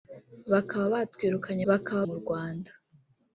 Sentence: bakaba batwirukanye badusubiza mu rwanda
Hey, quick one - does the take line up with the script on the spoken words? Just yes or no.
no